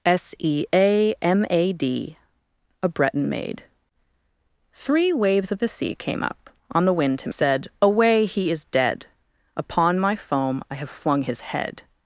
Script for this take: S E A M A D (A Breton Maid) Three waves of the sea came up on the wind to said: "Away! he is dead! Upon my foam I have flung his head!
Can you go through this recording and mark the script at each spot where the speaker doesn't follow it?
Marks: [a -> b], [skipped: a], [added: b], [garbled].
S E A M A D (A Breton Maid) Three waves of the sea came up on the wind to said: "Away! he is dead! Upon my foam I have flung his head!